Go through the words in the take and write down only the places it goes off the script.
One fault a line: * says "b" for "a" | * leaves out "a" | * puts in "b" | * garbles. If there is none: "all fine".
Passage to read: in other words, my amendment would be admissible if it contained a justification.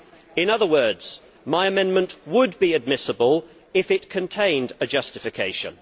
all fine